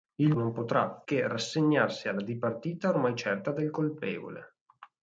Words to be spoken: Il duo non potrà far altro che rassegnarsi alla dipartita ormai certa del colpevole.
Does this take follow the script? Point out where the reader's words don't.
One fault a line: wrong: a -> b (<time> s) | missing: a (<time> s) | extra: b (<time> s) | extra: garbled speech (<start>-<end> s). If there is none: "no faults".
missing: duo (0.3 s)
missing: far altro (1.0 s)